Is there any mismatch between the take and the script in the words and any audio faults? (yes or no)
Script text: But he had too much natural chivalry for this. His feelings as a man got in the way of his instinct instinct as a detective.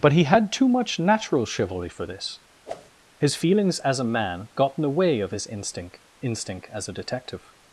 yes